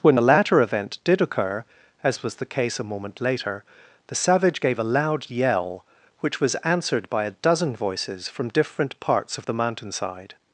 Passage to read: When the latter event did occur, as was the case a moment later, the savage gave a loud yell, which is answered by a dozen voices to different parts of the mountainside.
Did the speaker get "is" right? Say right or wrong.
wrong